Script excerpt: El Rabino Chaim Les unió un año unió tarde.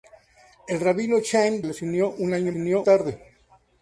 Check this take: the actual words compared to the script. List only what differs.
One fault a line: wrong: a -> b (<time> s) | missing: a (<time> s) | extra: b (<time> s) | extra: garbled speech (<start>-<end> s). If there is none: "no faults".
no faults